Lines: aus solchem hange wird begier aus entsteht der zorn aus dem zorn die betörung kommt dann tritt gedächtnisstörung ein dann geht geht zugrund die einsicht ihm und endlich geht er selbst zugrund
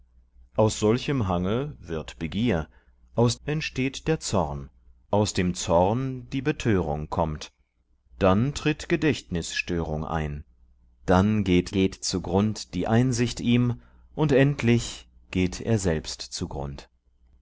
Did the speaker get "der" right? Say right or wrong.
right